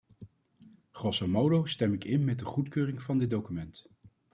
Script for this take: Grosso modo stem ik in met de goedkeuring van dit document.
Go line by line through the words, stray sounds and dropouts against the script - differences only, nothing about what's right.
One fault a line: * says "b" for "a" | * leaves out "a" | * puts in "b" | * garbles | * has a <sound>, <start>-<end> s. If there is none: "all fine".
all fine